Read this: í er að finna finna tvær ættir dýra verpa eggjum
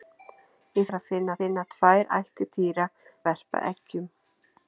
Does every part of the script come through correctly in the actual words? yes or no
yes